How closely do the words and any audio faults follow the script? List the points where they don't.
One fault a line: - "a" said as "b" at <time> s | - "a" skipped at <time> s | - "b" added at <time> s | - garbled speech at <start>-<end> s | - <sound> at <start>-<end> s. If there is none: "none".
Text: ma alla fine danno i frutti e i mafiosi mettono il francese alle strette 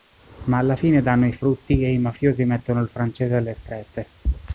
none